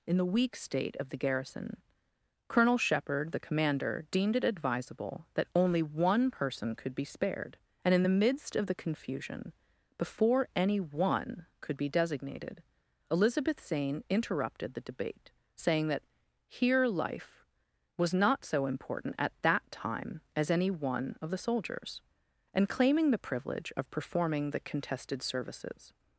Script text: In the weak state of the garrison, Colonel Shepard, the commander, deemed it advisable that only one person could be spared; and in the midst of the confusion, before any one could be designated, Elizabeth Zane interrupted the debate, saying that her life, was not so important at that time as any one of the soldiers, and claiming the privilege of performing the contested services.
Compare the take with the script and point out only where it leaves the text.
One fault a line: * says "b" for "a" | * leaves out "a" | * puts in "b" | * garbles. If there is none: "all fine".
* says "here" for "her"